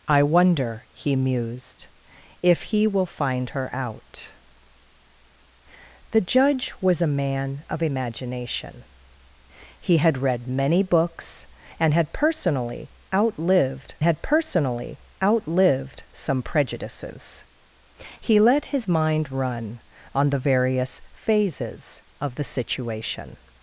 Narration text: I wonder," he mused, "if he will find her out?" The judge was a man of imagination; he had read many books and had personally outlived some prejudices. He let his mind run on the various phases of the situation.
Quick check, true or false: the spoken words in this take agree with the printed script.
false